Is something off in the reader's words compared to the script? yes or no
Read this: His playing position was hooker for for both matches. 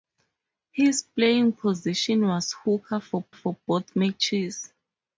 no